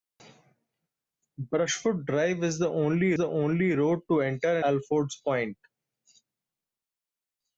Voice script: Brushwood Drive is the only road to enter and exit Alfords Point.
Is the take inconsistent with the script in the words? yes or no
yes